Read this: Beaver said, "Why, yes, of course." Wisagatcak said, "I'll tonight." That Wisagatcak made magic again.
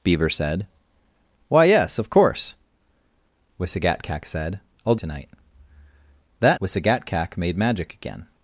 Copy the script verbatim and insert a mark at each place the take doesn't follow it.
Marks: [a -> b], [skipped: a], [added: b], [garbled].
Beaver said, "Why, yes, of course." Wisagatcak said, "I'll tonight." That Wisagatcak made magic again.